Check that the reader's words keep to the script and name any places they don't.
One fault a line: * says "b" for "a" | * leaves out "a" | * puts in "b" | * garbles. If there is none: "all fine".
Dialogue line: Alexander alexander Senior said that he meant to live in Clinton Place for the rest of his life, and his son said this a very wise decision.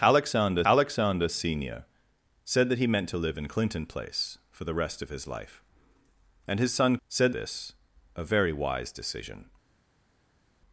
all fine